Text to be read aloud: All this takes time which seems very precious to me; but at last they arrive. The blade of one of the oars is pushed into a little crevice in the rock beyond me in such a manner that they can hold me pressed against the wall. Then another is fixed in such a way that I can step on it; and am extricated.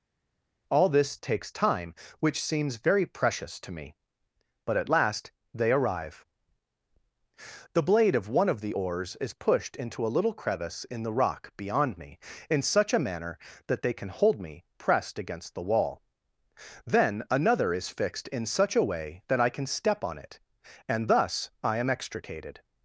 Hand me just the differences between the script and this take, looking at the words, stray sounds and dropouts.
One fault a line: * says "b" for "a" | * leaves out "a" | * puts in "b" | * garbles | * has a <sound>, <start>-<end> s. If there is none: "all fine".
* puts in "thus I"